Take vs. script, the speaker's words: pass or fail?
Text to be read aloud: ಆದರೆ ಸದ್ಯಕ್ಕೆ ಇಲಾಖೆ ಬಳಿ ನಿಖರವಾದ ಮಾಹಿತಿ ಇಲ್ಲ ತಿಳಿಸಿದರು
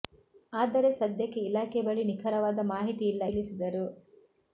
pass